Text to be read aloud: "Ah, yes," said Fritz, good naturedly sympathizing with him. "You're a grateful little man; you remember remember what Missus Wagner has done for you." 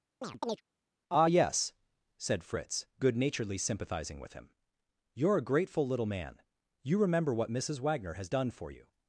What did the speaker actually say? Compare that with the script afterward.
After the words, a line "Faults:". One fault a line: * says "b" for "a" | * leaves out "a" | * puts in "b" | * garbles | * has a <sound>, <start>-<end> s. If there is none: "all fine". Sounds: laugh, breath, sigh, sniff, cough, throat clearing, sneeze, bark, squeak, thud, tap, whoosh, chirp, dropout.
"Ah, yes," said Fritz, good naturedly sympathizing with him. "You're a grateful little man; you remember what Missus Wagner has done for you."
Faults:
* has a chirp, 0.2-0.6 s
* leaves out "remember"